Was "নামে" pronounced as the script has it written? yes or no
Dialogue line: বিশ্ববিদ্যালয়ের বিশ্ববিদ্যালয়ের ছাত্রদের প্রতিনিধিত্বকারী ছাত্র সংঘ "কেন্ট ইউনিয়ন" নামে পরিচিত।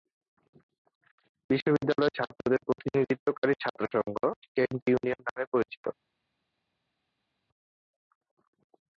yes